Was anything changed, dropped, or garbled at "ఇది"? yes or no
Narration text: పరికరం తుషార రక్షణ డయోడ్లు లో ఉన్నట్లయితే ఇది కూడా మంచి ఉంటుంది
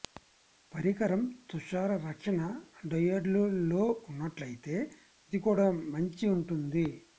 no